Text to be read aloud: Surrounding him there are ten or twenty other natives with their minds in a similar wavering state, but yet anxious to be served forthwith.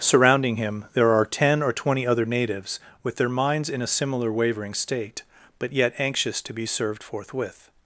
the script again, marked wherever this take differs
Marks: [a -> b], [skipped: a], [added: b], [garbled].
Surrounding him there are ten or twenty other natives with their minds in a similar wavering state, but yet anxious to be served forthwith.